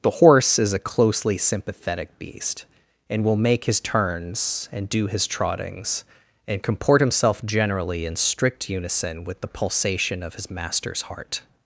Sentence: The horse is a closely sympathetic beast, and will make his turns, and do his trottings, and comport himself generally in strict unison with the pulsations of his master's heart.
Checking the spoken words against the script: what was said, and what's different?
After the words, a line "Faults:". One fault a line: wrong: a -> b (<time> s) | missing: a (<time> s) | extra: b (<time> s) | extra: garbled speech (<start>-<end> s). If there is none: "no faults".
The horse is a closely sympathetic beast, and will make his turns, and do his trottings, and comport himself generally in strict unison with the pulsation of his master's heart.
Faults:
wrong: pulsations -> pulsation (9.5 s)